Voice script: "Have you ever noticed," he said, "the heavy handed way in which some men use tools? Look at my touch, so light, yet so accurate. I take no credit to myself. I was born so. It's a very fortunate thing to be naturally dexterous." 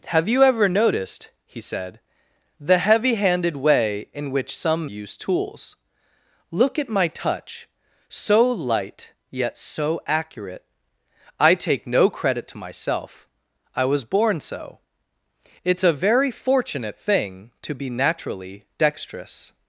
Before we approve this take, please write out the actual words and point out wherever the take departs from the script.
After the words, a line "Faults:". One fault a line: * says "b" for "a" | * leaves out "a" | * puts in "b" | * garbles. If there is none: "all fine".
"Have you ever noticed," he said, "the heavy handed way in which some use tools? Look at my touch, so light, yet so accurate. I take no credit to myself. I was born so. It's a very fortunate thing to be naturally dexterous."
Faults:
* leaves out "men"